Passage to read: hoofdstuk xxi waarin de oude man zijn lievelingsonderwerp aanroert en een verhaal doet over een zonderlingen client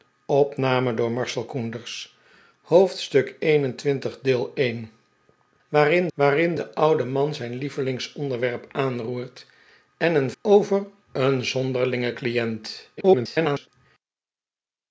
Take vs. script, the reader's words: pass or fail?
fail